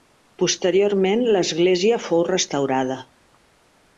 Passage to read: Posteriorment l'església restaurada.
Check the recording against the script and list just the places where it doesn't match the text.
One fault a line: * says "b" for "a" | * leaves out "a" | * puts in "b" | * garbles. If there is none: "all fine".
* puts in "fou"